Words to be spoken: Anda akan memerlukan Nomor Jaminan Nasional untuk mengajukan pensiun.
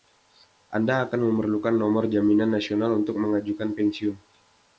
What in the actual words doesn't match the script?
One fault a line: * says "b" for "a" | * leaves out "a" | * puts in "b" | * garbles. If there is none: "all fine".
all fine